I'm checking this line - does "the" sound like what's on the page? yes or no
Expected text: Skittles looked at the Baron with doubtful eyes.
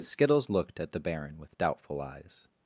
yes